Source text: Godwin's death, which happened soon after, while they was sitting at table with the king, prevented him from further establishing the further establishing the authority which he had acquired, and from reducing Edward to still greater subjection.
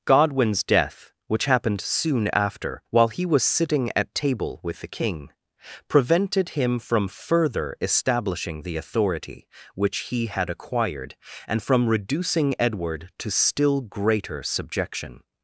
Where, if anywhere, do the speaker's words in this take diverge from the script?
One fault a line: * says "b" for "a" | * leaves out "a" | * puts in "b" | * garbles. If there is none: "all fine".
* says "he" for "they"
* leaves out "further establishing the"